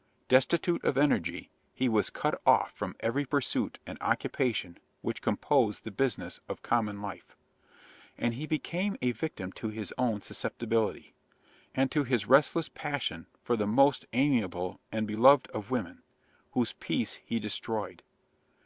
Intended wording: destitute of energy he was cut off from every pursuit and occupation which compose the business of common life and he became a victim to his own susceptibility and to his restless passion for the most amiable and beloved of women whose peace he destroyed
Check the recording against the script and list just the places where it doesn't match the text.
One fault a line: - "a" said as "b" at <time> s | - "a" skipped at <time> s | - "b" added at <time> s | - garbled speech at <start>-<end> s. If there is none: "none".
none